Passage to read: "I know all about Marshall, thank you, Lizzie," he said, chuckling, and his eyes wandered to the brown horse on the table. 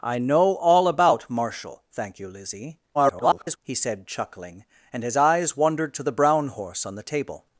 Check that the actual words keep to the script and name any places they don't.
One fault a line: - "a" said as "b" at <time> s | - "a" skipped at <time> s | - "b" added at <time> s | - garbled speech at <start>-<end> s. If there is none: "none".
- garbled speech at 2.9-3.6 s